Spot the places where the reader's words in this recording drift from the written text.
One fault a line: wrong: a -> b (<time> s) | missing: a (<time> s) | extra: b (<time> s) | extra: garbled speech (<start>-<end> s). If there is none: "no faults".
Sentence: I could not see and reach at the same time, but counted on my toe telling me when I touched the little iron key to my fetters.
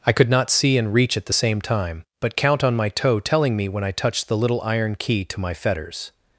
wrong: counted -> count (2.4 s)